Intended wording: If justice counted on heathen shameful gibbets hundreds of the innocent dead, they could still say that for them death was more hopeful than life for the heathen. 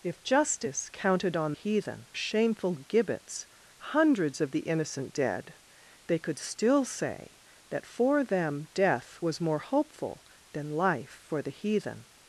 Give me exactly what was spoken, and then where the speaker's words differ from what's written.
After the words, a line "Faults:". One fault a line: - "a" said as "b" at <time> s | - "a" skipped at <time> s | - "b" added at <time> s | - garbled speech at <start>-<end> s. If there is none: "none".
If justice counted on heathen shameful gibbets hundreds of the innocent dead, they could still say that for them death was more hopeful than life for the heathen.
Faults:
none